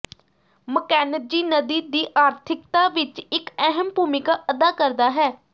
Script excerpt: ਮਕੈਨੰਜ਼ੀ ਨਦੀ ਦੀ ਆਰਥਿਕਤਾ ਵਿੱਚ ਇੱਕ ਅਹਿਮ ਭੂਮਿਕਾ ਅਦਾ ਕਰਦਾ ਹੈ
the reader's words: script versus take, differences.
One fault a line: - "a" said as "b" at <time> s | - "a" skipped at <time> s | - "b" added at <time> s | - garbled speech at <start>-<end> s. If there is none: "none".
none